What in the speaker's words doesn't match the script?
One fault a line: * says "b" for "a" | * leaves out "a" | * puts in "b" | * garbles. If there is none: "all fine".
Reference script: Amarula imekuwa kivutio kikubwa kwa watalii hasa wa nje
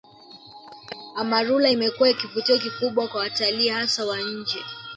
all fine